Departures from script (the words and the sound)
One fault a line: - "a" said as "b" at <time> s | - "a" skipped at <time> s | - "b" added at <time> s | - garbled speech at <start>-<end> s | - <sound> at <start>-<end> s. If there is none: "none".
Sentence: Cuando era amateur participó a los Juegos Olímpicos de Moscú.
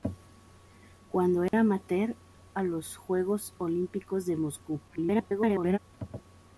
- dropout at 1.5-1.5 s
- "participó" skipped at 2.1 s
- garbled speech at 4.9-5.8 s